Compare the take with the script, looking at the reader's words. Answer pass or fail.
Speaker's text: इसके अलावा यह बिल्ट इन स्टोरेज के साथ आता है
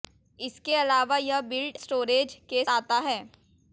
fail